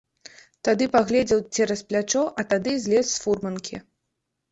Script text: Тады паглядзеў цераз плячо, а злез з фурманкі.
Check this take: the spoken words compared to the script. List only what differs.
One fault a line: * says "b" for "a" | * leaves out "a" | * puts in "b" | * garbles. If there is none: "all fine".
* puts in "тады"